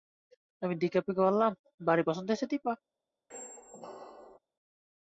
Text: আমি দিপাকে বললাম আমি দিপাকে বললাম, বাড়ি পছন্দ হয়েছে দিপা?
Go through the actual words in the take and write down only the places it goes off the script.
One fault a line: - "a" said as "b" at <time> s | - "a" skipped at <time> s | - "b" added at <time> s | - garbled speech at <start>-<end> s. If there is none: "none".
- "আমি দিপাকে বললাম" skipped at 1.5 s